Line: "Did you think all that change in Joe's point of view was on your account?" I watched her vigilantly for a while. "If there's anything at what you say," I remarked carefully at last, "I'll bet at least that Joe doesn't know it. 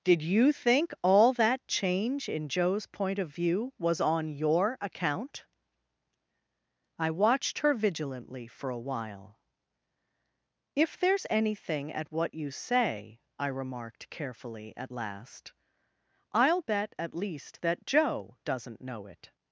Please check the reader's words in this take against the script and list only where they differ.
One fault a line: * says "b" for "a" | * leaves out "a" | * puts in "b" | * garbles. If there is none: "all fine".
all fine